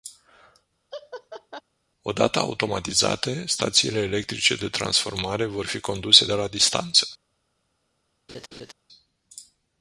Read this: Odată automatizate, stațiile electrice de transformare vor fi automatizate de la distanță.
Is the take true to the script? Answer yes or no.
no